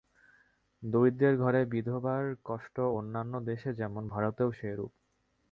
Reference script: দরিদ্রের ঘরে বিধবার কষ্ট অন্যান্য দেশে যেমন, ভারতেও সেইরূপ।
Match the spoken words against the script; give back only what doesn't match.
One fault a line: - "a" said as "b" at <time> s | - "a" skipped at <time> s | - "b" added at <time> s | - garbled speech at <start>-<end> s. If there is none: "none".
none